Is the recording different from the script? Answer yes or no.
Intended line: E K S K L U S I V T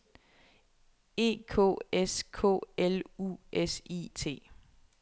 yes